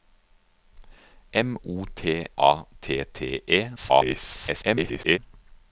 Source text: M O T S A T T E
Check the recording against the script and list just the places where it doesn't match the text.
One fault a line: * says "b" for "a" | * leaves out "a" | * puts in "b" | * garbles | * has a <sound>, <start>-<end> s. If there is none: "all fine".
* leaves out "S"
* garbles